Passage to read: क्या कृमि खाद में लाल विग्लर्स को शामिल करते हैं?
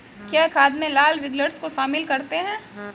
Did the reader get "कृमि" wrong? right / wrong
wrong